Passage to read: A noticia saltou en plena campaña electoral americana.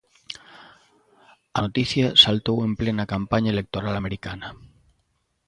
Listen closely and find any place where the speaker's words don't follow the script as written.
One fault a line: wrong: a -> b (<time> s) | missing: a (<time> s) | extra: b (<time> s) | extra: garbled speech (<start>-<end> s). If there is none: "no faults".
no faults